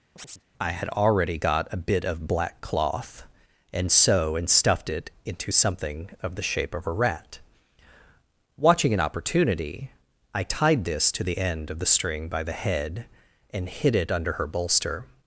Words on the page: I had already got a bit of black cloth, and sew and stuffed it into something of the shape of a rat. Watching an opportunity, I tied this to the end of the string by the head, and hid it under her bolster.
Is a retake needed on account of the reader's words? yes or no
no